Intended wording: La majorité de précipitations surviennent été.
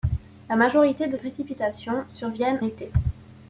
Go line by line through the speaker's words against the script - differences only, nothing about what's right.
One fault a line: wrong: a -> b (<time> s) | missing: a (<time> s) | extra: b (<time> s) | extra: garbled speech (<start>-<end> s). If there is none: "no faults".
no faults